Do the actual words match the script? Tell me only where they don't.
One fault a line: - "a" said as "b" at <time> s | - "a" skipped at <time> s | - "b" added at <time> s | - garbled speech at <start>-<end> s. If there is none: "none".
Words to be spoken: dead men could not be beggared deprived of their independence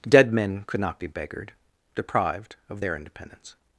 none